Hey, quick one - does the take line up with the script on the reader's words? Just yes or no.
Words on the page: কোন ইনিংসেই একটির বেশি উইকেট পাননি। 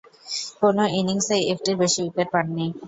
yes